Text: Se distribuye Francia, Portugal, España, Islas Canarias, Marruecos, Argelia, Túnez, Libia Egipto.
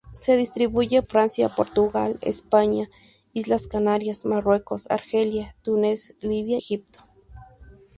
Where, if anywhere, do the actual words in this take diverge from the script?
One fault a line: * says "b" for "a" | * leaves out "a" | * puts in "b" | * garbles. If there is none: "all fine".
all fine